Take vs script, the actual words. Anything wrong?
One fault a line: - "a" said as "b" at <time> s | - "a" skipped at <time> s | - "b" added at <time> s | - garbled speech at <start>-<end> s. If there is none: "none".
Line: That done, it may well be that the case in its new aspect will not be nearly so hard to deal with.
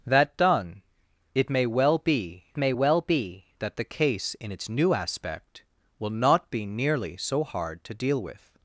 - "may well be" added at 2.6 s